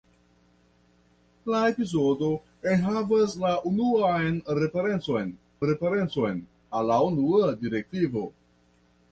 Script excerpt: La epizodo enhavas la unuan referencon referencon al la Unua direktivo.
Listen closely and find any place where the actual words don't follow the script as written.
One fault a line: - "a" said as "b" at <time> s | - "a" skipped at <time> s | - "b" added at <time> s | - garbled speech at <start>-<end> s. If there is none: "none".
none